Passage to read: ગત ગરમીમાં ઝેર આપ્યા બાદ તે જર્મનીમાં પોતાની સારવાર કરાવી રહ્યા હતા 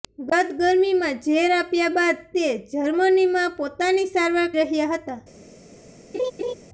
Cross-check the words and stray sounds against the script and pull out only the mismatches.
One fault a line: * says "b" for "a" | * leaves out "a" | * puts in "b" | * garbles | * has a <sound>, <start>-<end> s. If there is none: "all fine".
* leaves out "કરાવી"
* has a laugh, 6.1-6.5 s